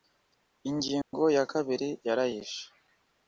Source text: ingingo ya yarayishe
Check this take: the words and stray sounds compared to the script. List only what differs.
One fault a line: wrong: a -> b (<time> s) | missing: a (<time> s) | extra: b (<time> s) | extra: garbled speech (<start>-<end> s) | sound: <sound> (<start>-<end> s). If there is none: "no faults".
sound: dropout (1.0-1.1 s)
extra: kabiri (1.5 s)